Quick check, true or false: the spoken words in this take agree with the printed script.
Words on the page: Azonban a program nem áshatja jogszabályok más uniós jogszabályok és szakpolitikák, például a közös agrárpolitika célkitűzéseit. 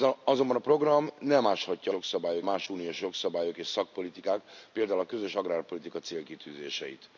true